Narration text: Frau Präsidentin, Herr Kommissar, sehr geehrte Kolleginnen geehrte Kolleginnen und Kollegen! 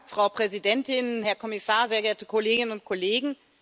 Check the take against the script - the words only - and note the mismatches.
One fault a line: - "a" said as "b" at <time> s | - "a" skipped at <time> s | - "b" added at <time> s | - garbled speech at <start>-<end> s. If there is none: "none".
- "geehrte Kolleginnen" skipped at 2.7 s